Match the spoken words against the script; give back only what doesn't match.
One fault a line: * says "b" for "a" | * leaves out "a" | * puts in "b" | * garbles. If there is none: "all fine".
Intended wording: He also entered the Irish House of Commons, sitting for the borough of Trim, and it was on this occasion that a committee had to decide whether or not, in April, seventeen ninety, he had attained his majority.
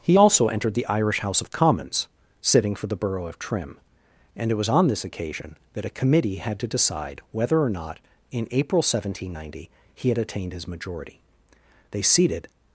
* puts in "They seated"